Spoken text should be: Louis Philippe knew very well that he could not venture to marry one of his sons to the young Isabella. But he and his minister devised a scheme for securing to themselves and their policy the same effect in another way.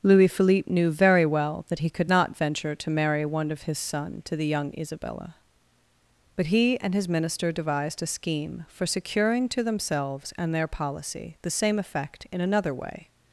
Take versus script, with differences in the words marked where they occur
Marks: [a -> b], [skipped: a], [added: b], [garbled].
Louis Philippe knew very well that he could not venture to marry one of his [sons -> son] to the young Isabella. But he and his minister devised a scheme for securing to themselves and their policy the same effect in another way.